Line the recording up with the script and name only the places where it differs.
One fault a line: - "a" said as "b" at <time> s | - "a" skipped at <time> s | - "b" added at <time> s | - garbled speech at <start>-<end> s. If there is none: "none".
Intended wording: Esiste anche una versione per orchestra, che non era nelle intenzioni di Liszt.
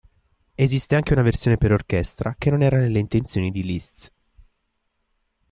none